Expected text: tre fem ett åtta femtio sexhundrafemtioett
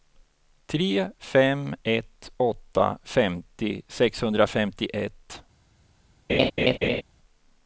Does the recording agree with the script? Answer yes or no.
yes